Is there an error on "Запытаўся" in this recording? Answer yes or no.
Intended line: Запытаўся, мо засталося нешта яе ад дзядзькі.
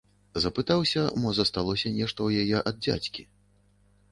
no